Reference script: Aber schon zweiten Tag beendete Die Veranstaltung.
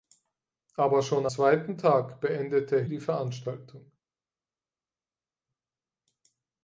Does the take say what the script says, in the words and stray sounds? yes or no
yes